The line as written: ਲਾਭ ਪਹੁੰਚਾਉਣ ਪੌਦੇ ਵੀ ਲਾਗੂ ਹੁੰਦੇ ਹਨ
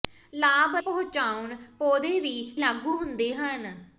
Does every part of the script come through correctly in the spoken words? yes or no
yes